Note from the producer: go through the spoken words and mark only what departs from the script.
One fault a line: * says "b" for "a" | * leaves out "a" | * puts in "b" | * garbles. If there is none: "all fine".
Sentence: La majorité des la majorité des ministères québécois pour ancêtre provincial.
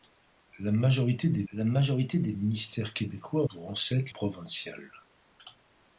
all fine